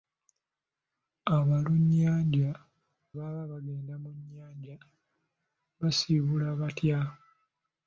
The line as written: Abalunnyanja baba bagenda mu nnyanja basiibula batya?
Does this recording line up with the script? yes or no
yes